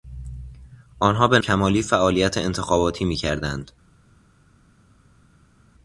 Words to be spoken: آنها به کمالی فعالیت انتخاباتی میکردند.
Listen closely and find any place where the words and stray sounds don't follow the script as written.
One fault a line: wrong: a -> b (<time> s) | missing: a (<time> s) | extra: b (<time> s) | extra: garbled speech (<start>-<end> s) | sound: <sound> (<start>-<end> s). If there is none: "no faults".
no faults